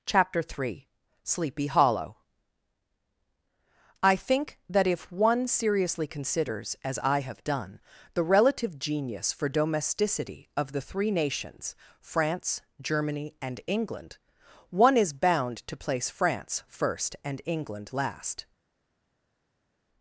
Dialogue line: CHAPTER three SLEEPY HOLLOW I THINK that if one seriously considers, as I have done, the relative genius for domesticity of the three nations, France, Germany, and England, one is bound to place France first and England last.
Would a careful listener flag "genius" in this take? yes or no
no